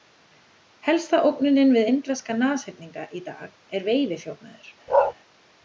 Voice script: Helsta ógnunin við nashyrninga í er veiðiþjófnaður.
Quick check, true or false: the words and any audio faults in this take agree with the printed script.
false